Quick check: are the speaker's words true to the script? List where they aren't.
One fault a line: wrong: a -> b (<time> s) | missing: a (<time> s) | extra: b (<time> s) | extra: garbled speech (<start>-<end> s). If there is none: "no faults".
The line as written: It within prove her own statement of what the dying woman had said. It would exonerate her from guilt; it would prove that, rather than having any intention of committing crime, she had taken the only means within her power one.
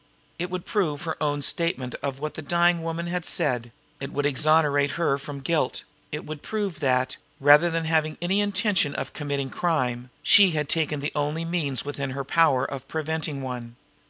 wrong: within -> would (0.5 s)
extra: of preventing (12.6 s)